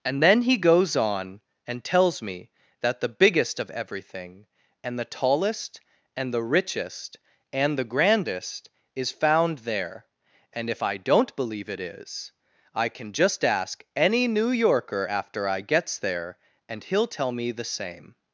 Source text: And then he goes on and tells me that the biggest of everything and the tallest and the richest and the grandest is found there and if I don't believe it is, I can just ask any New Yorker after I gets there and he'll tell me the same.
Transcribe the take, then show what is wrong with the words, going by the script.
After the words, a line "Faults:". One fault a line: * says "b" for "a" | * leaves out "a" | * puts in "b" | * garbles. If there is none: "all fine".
And then he goes on and tells me that the biggest of everything and the tallest and the richest and the grandest is found there and if I don't believe it is, I can just ask any New Yorker after I gets there and he'll tell me the same.
Faults:
all fine